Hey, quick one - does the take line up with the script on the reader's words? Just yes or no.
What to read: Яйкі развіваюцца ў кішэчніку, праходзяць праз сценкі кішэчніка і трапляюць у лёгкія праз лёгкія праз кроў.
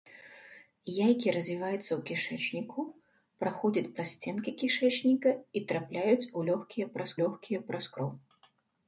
yes